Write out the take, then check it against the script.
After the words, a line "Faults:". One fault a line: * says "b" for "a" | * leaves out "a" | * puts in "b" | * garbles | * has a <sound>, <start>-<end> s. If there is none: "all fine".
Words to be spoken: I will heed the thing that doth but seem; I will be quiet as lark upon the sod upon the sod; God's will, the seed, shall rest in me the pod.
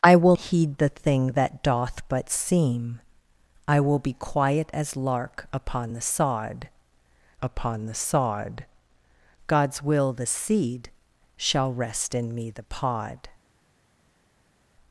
I will heed the thing that doth but seem; I will be quiet as lark upon the sod upon the sod; God's will, the seed, shall rest in me the pod.
Faults:
all fine